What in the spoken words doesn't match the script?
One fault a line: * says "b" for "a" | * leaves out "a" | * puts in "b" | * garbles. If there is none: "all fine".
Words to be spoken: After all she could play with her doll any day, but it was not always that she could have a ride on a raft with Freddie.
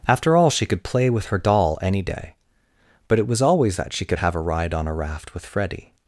* leaves out "not"